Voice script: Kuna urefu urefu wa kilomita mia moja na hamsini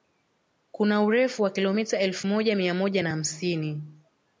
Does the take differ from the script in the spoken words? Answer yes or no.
yes